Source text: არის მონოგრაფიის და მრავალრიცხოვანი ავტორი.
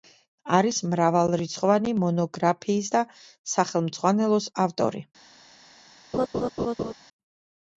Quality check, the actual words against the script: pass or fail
fail